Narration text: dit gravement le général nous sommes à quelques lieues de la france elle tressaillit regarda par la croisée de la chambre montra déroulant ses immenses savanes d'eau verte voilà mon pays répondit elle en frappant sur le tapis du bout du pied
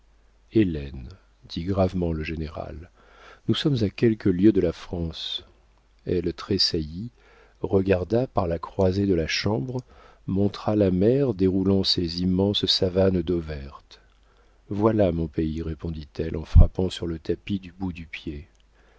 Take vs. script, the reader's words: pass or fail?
fail